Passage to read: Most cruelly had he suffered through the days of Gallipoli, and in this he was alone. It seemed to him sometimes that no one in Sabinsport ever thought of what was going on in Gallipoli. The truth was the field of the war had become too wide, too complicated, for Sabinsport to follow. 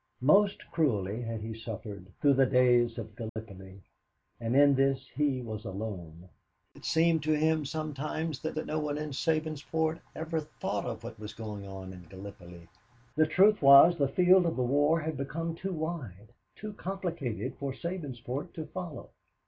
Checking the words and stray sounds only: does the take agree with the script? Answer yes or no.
no